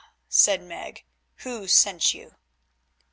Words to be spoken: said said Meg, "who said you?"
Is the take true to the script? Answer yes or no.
no